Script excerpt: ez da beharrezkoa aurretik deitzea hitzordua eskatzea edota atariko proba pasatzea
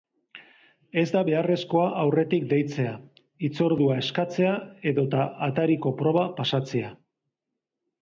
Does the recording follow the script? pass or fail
pass